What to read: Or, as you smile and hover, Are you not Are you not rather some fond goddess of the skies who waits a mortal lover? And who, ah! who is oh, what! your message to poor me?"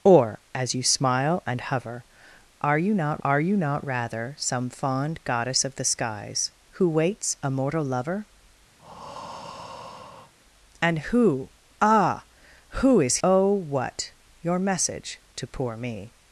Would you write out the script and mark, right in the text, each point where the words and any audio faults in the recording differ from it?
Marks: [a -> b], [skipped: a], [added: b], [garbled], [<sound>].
Or, as you smile and hover, Are you not Are you not rather some fond goddess of the skies who waits a mortal lover? [breath] And who, ah! who is oh, what! your message to poor me?"